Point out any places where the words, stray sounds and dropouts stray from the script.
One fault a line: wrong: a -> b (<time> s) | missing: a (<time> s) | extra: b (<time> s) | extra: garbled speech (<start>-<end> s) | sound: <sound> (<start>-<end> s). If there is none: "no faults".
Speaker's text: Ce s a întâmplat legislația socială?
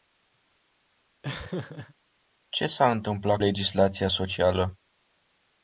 sound: laugh (1.2-1.9 s)